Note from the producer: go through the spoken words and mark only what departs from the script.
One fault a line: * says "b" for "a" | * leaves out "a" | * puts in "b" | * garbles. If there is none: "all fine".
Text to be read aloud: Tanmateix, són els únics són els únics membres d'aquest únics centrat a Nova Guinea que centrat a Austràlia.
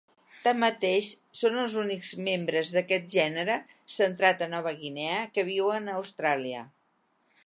* leaves out "són els únics"
* says "gènere" for "únics"
* says "viuen" for "centrat"